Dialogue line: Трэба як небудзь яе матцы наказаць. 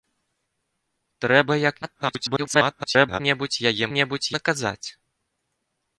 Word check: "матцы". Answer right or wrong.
wrong